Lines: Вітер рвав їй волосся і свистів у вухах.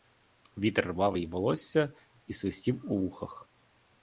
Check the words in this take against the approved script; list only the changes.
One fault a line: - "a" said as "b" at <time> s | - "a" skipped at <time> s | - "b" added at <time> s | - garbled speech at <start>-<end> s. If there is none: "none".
none